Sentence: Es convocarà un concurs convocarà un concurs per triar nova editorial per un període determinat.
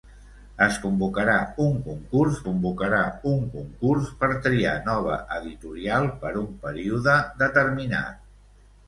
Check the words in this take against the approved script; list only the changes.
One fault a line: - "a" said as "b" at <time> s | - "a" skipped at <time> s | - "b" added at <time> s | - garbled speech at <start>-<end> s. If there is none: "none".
none